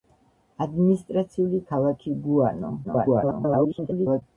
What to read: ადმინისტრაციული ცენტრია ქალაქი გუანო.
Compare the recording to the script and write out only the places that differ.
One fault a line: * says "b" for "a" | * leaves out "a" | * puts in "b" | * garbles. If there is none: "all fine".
* leaves out "ცენტრია"
* garbles